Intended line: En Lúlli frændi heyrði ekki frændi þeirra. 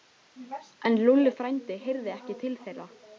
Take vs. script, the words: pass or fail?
fail